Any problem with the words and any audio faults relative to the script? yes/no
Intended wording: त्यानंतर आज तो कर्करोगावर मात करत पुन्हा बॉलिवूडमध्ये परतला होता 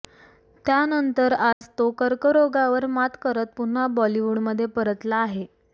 yes